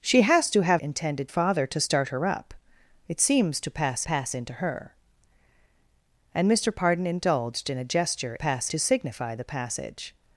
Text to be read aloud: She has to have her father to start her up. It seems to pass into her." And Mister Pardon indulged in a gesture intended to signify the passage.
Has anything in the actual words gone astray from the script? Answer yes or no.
yes